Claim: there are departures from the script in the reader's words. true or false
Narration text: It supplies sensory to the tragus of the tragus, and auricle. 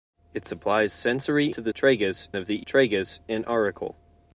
false